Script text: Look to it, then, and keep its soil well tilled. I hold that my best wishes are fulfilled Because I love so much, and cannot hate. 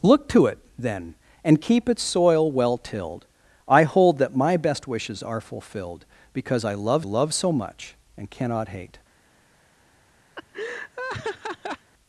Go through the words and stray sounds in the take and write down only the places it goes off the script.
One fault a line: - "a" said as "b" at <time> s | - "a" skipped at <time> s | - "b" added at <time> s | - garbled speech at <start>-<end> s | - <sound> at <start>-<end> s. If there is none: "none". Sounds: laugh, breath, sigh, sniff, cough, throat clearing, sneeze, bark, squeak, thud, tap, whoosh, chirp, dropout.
- "love" added at 7.0 s
- laugh at 10.4-11.9 s